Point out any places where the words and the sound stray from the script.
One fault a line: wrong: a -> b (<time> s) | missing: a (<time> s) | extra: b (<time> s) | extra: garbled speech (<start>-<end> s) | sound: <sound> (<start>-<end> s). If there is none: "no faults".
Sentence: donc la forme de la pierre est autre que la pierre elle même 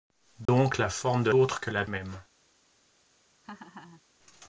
sound: dropout (0.5-0.5 s)
missing: la pierre est (1.3 s)
missing: pierre elle (1.8 s)
sound: laugh (3.4-4.0 s)